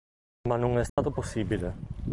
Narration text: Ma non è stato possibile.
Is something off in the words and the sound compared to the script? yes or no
yes